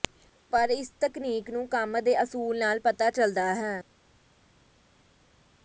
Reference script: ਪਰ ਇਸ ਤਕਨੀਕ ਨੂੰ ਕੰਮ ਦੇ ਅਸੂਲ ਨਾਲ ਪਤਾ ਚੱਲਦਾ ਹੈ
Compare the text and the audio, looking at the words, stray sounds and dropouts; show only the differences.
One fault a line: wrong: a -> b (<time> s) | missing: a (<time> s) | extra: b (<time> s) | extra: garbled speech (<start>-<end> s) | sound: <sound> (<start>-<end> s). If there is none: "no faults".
no faults